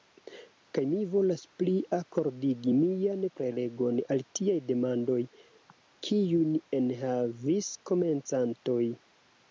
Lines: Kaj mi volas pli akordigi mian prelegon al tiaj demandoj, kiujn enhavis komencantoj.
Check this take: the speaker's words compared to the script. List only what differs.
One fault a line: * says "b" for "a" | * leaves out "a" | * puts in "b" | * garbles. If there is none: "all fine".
all fine